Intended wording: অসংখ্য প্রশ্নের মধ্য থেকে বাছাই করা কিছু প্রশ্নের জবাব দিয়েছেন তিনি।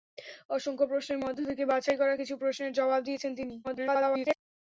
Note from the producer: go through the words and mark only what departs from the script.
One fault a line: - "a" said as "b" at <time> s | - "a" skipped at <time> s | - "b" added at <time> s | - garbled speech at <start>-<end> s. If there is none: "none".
- garbled speech at 3.6-4.4 s